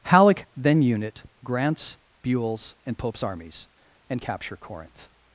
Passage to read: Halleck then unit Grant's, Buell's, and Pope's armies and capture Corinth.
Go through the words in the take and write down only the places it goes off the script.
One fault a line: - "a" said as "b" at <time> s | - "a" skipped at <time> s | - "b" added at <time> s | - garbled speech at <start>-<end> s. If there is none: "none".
none